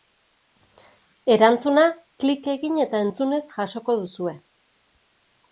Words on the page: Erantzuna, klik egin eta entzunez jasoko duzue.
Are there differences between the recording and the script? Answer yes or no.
no